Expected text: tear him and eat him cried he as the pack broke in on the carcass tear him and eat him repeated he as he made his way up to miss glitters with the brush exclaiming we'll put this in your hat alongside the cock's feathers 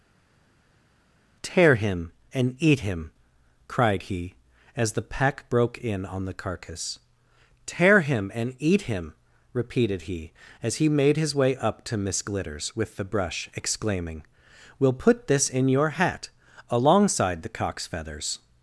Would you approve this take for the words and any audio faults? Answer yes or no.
yes